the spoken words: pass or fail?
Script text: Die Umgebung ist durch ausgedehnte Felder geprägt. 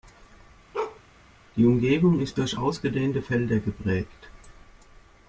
pass